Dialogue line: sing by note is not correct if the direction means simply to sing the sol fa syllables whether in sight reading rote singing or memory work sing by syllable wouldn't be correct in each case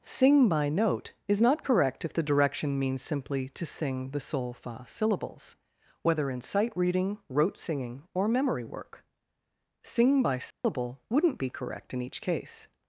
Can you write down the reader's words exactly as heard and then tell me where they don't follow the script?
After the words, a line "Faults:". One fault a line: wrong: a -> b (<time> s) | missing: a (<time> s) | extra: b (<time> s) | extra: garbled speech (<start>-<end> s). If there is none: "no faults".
sing by note is not correct if the direction means simply to sing the sol fa syllables whether in sight reading rote singing or memory work sing by syllable wouldn't be correct in each case
Faults:
no faults